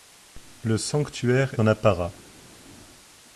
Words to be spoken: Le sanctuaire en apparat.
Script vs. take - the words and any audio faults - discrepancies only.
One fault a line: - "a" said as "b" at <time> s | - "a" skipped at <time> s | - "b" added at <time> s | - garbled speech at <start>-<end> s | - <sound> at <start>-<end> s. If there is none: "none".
none